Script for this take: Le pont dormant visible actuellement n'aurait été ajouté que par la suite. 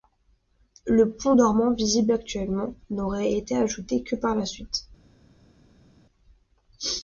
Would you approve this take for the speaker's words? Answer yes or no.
yes